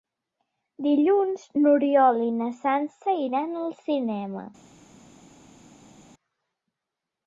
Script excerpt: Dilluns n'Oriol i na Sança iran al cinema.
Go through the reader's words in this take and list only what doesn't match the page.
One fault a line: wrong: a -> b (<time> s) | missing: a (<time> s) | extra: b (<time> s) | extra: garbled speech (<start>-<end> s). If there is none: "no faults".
no faults